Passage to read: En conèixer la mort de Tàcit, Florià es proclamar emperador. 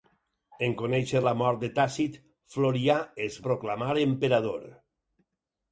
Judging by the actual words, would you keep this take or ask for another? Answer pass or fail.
pass